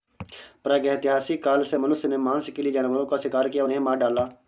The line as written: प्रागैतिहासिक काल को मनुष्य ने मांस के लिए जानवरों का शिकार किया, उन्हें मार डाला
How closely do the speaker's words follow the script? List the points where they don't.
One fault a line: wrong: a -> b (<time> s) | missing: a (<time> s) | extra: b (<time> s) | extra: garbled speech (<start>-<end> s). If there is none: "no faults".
wrong: को -> से (1.6 s)